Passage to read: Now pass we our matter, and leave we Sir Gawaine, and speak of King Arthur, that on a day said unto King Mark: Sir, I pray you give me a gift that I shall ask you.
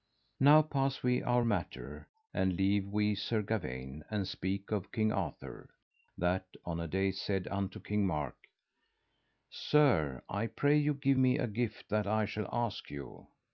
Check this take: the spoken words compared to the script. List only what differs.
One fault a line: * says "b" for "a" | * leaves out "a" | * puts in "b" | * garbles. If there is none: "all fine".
all fine